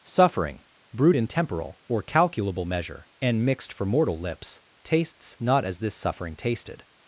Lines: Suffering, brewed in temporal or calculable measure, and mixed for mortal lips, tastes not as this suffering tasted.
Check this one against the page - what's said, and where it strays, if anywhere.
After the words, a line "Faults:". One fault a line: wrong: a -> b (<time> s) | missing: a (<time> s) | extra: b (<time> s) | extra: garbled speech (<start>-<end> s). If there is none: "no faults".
Suffering, brewed in temporal or calculable measure, and mixed for mortal lips, tastes not as this suffering tasted.
Faults:
no faults